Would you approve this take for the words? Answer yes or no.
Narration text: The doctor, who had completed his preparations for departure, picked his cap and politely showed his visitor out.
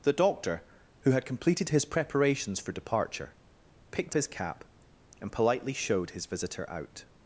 yes